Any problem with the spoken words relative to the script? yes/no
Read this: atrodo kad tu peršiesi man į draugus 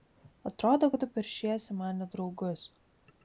no